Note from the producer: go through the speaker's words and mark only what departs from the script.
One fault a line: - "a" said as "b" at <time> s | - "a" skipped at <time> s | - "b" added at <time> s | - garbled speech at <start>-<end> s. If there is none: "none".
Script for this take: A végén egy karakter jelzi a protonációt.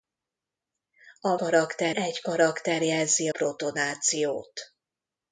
- "végén" said as "karakter" at 1.4 s
- "a" skipped at 3.3 s